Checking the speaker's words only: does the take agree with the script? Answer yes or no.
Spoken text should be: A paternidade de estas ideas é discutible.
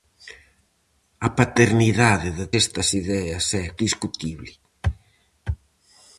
yes